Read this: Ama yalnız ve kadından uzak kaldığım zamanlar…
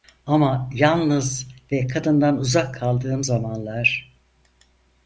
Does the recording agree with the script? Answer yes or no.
yes